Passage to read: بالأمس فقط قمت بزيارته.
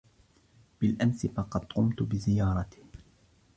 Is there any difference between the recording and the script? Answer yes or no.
no